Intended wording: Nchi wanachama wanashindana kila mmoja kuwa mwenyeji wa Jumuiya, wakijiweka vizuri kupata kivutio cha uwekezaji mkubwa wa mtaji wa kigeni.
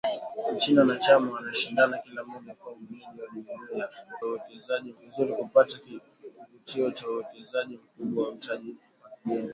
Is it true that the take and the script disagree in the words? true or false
true